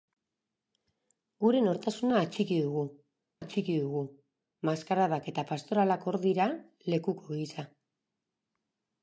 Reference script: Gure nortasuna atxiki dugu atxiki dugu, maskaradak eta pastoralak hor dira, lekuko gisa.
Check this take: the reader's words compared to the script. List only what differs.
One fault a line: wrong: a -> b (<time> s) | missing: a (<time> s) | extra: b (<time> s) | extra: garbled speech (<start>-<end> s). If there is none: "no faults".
no faults